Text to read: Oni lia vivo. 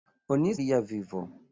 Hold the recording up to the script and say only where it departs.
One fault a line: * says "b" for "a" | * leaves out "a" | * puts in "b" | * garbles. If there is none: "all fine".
all fine